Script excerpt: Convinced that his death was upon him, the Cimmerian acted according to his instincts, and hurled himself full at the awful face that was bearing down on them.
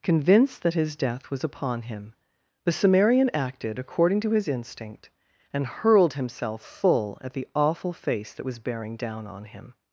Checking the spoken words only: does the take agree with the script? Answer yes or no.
no